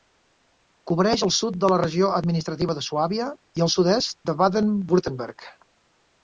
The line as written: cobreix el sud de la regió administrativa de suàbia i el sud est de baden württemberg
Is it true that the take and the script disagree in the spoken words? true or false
false